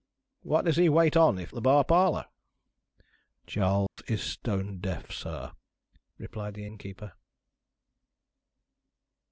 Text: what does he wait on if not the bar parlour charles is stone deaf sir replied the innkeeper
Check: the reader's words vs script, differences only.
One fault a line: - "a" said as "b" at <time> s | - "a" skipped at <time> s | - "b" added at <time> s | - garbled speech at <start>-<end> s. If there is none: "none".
- "not" skipped at 1.5 s